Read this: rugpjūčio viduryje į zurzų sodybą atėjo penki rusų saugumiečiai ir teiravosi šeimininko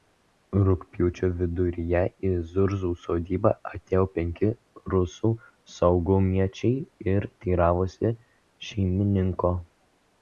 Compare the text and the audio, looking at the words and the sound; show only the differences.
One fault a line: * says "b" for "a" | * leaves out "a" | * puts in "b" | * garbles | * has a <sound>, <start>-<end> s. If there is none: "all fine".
all fine